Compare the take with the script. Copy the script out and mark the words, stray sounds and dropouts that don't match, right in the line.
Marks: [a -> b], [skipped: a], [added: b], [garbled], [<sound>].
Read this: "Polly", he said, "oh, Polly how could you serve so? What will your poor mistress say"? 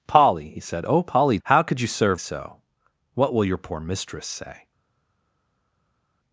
"Polly", he said, "oh, Polly how could you serve so? What will your poor mistress say"?